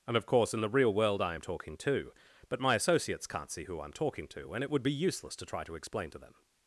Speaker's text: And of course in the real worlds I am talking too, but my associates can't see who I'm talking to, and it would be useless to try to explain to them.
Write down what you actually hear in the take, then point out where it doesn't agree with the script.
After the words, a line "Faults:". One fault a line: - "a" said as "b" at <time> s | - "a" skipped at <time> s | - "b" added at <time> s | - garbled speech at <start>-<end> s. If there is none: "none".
And of course in the real world I am talking too, but my associates can't see who I'm talking to, and it would be useless to try to explain to them.
Faults:
- "worlds" said as "world" at 0.9 s